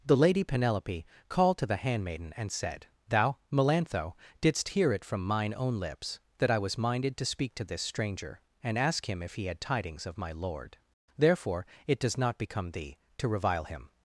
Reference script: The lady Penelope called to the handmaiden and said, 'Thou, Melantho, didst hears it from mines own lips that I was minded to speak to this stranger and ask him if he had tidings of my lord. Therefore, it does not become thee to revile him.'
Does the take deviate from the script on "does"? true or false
false